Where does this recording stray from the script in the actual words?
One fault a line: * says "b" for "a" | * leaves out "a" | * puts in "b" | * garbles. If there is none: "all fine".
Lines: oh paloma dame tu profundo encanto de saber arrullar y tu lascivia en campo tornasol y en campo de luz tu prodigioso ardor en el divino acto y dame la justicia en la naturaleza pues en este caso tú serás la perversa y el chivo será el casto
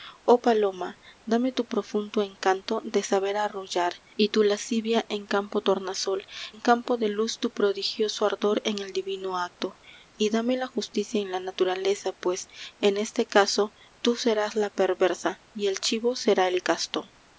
* leaves out "y"